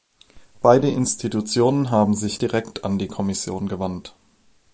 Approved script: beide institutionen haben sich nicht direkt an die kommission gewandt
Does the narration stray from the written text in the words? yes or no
yes